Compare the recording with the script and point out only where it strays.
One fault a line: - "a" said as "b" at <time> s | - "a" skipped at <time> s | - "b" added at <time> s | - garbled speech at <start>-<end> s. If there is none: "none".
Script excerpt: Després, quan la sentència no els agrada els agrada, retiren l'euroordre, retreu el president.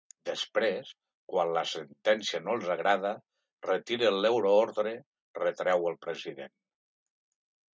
- "els agrada" skipped at 3.1 s